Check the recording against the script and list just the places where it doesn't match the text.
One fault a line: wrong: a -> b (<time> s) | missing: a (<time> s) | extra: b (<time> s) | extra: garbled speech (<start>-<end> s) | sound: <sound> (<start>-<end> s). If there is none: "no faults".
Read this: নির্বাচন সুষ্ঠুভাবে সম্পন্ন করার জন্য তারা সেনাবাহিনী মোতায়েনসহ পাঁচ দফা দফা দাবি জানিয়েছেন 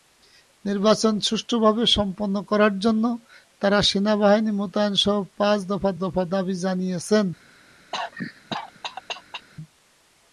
sound: cough (7.9-9.5 s)